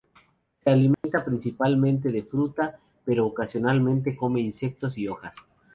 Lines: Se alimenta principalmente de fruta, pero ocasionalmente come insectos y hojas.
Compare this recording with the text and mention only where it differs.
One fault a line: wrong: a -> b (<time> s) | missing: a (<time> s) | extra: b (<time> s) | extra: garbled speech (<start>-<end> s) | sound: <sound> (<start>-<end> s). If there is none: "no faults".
sound: dropout (0.9-1.0 s)